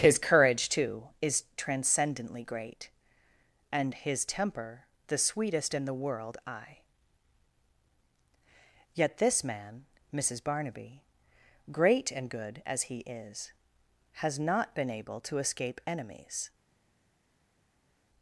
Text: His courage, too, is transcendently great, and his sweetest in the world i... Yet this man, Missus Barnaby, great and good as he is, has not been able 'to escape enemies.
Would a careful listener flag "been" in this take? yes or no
no